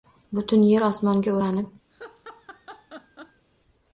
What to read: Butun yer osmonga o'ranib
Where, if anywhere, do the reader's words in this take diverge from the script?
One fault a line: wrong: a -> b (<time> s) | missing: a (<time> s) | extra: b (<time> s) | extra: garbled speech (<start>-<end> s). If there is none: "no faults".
no faults